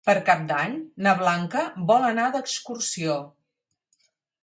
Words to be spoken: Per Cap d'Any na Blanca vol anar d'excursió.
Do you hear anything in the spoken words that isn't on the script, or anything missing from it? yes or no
no